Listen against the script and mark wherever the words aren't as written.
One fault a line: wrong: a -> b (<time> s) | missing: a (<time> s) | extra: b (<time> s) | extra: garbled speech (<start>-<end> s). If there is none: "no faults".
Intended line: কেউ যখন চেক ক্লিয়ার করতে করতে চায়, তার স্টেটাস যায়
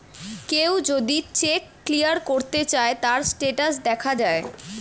wrong: যখন -> যদি (0.9 s)
missing: করতে (2.6 s)
extra: দেখা (3.8 s)